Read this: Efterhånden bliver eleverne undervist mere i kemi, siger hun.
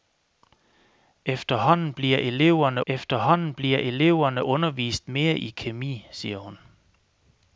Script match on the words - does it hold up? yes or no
no